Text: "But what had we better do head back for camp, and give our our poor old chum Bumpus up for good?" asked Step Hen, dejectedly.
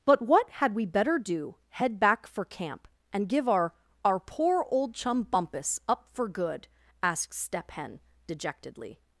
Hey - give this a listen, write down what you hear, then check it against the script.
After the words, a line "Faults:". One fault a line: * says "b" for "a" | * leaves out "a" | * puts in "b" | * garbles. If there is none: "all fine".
"But what had we better do head back for camp, and give our our poor old chum Bumpus up for good?" asked Step Hen, dejectedly.
Faults:
all fine